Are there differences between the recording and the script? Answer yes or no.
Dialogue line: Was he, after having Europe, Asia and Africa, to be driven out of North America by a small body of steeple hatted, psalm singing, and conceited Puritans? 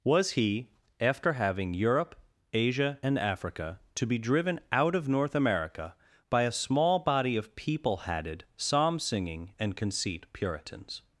yes